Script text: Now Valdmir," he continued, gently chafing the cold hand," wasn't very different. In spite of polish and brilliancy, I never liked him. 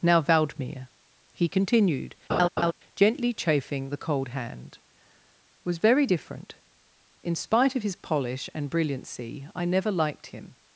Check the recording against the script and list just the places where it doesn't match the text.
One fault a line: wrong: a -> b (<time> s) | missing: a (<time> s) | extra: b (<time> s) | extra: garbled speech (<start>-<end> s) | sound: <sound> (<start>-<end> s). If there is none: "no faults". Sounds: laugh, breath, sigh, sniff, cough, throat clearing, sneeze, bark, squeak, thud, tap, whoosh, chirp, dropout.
sound: laugh (2.3-2.7 s)
wrong: wasn't -> was (5.6 s)
extra: his (7.8 s)